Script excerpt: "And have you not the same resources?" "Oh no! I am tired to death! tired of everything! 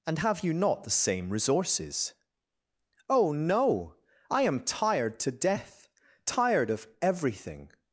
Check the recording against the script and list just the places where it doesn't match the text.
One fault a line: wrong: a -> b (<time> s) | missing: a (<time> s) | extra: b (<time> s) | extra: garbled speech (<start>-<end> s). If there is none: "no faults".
no faults